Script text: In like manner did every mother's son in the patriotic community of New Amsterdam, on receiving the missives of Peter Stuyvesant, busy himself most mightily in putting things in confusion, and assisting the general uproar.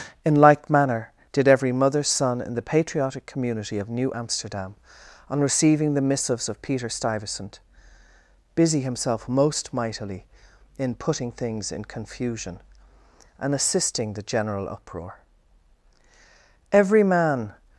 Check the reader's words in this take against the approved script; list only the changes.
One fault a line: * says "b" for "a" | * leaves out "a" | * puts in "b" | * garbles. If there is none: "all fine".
* puts in "Every man"